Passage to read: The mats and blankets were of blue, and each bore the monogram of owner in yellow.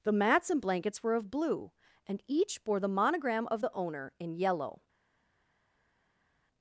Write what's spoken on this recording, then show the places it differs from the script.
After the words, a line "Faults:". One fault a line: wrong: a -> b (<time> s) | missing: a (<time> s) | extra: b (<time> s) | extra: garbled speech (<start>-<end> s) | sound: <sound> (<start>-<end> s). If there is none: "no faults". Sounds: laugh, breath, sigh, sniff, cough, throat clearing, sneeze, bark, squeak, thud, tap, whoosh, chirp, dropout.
The mats and blankets were of blue, and each bore the monogram of the owner in yellow.
Faults:
extra: the (3.6 s)